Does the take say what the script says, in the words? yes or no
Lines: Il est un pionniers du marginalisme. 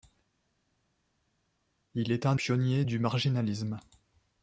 yes